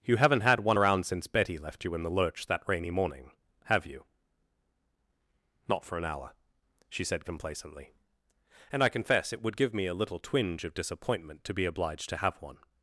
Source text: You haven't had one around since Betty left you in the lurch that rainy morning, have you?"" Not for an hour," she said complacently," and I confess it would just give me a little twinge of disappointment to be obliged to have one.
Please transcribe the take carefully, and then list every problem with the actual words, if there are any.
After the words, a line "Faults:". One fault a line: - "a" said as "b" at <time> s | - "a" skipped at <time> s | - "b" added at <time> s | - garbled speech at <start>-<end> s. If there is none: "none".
You haven't had one around since Betty left you in the lurch that rainy morning, have you?"" Not for an hour," she said complacently," and I confess it would give me a little twinge of disappointment to be obliged to have one.
Faults:
- "just" skipped at 9.6 s